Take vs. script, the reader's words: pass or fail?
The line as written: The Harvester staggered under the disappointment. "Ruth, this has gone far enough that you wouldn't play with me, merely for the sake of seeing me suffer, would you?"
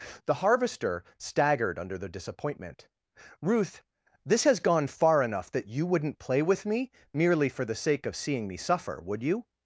pass